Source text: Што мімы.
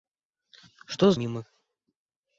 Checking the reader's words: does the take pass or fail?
pass